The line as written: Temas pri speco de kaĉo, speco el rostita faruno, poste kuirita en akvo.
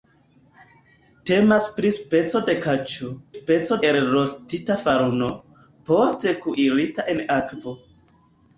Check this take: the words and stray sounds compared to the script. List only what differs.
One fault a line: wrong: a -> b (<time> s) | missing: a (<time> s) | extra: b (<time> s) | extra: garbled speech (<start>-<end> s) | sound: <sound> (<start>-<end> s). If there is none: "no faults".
no faults